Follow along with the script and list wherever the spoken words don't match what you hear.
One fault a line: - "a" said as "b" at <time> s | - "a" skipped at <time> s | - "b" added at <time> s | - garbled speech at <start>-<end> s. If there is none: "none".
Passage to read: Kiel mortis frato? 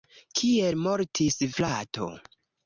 none